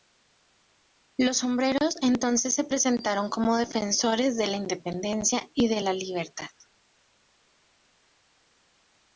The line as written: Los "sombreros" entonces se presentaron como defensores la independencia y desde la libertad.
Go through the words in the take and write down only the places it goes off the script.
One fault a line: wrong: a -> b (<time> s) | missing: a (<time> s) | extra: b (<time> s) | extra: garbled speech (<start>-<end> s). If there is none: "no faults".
extra: de (4.4 s)
wrong: desde -> de (5.7 s)